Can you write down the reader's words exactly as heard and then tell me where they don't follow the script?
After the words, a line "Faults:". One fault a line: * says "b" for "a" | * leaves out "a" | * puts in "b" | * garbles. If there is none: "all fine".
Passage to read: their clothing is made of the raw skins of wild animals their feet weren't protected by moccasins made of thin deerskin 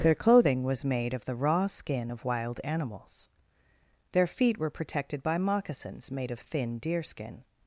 their clothing was made of the raw skin of wild animals their feet were protected by moccasins made of thin deerskin
Faults:
* says "was" for "is"
* says "skin" for "skins"
* says "were" for "weren't"